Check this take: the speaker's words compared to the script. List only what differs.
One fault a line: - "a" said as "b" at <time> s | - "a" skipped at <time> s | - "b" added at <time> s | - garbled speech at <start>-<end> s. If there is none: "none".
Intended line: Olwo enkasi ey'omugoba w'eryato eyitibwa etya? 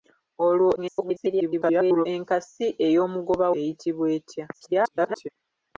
- garbled speech at 0.8-2.1 s
- "w'eryato" skipped at 3.5 s
- garbled speech at 4.5-5.3 s